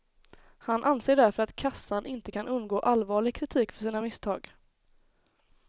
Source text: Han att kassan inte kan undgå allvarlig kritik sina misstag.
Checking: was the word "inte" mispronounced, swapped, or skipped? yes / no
no